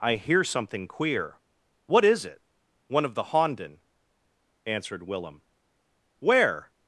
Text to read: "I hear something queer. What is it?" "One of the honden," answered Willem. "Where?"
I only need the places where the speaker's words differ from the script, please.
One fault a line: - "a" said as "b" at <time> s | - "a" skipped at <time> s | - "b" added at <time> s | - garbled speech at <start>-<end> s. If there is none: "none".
none